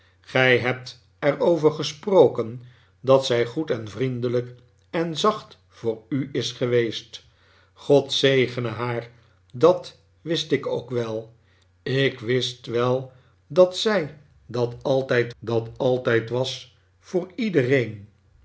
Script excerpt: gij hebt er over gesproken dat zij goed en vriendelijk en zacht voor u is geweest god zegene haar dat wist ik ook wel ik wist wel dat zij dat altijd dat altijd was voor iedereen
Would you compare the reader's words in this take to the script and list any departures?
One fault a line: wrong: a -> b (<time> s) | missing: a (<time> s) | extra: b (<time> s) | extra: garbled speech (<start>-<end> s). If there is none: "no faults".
no faults